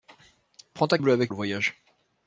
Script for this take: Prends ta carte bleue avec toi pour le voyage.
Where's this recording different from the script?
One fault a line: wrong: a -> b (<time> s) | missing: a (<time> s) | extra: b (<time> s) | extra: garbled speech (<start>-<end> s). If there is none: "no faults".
missing: carte (1.0 s)
missing: toi pour (1.3 s)